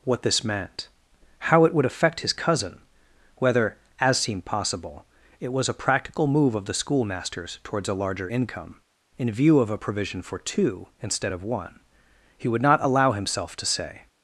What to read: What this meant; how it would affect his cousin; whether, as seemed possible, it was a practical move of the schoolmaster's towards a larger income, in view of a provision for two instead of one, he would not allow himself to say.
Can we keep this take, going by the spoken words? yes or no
yes